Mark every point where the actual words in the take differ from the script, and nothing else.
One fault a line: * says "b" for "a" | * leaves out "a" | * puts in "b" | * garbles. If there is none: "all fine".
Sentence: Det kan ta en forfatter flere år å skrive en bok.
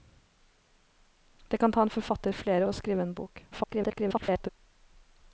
* leaves out "år"
* garbles